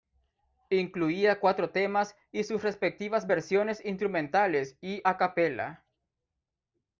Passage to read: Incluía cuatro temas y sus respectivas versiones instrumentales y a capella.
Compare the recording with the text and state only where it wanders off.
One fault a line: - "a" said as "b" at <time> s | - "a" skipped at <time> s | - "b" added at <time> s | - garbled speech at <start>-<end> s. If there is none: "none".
none